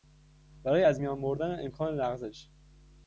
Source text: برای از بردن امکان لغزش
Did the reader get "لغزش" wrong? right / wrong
right